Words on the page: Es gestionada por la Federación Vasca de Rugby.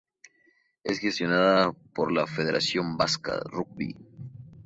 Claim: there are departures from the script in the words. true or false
true